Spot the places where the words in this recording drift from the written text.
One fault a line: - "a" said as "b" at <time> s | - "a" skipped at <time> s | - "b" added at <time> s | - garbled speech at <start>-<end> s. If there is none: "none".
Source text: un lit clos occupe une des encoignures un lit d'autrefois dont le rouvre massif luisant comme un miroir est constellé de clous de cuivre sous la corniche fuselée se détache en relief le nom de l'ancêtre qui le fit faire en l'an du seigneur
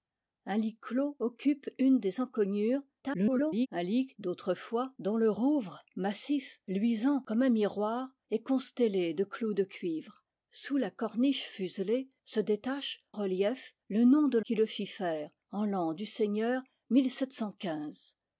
- garbled speech at 3.0-3.7 s
- "en" skipped at 13.0 s
- "l'ancêtre" skipped at 14.4 s